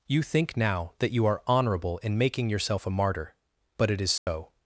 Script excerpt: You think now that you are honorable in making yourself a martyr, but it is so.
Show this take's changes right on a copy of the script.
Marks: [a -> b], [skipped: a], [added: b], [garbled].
You think now that you are honorable in making yourself a martyr, but it is so.